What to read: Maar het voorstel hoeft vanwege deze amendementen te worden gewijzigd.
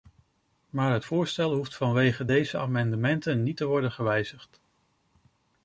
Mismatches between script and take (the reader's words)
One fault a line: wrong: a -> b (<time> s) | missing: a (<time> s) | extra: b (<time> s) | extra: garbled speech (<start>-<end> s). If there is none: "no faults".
extra: niet (3.4 s)